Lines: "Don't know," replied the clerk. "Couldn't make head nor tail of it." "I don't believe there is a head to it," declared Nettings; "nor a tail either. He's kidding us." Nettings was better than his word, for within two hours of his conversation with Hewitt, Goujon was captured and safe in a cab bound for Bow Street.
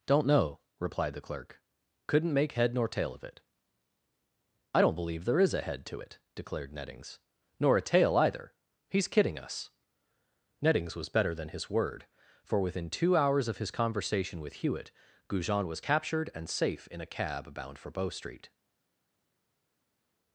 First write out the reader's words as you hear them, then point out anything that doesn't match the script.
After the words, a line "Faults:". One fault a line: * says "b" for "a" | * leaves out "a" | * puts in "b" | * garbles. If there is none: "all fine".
"Don't know," replied the clerk. "Couldn't make head nor tail of it." "I don't believe there is a head to it," declared Nettings; "nor a tail either. He's kidding us." Nettings was better than his word, for within two hours of his conversation with Hewitt, Goujon was captured and safe in a cab bound for Bow Street.
Faults:
all fine